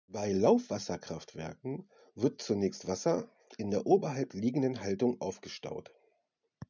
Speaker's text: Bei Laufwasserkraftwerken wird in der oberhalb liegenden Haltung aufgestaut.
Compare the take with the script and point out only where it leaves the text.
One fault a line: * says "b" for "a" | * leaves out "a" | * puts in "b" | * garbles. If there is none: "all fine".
* puts in "zunächst Wasser"